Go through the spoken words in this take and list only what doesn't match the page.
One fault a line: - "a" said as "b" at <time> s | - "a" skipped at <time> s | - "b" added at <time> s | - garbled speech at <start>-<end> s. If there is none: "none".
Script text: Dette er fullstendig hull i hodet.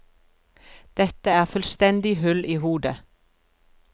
none